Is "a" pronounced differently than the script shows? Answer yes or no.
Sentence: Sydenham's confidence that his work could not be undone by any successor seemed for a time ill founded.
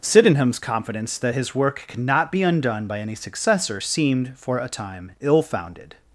no